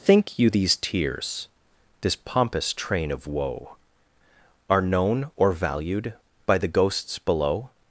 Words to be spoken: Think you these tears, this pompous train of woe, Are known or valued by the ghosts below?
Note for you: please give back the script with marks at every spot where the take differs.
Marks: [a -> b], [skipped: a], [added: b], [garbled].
Think you these tears, this pompous train of woe, Are known or valued by the ghosts below?